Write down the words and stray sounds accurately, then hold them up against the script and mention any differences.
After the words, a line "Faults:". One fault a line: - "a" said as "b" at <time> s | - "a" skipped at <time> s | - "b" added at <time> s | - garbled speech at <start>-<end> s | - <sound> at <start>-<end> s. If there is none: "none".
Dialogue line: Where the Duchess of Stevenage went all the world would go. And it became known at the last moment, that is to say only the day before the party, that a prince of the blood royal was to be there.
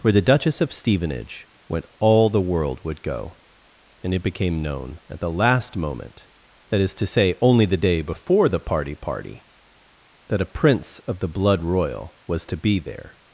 Where the Duchess of Stevenage went all the world would go. And it became known at the last moment, that is to say only the day before the party party, that a prince of the blood royal was to be there.
Faults:
- "party" added at 8.9 s